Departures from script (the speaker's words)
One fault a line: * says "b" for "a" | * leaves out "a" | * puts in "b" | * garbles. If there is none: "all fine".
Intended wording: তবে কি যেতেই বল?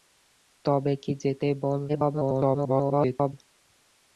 * garbles